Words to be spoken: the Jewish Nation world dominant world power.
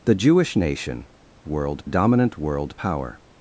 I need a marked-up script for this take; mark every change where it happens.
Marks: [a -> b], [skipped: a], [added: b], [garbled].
the Jewish Nation world dominant world power.